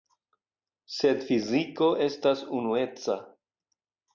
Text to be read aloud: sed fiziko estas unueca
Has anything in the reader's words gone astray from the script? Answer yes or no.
no